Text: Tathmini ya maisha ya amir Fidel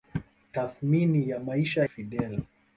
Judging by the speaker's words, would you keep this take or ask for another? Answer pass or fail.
fail